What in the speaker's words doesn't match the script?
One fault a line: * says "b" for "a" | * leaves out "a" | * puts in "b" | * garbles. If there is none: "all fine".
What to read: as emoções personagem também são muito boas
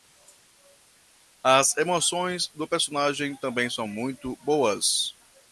* puts in "do"